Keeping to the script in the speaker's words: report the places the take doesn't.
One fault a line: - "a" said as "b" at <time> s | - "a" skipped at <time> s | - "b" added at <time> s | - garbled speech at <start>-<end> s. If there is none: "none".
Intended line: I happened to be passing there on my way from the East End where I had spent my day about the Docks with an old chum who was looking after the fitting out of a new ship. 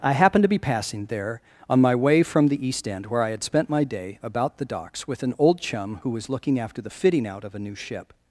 none